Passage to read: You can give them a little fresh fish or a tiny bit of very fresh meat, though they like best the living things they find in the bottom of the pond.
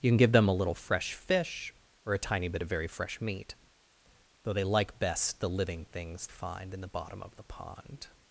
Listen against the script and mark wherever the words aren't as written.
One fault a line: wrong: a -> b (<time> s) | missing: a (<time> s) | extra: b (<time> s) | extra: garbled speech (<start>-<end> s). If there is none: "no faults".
missing: they (6.3 s)